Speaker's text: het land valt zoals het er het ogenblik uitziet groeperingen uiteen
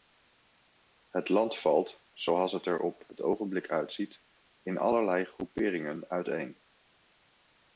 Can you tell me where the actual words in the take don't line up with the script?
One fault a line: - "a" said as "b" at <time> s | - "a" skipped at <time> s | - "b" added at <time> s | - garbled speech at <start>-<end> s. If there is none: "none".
- "op" added at 2.8 s
- "in allerlei" added at 4.6 s